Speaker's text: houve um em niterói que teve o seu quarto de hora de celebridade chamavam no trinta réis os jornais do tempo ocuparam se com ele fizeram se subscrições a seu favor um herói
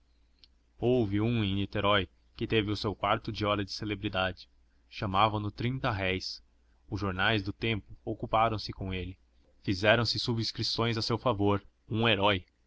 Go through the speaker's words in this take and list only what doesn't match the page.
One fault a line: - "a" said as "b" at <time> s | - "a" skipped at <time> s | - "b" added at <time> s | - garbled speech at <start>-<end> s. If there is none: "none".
none